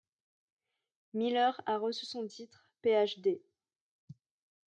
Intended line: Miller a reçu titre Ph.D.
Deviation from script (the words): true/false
true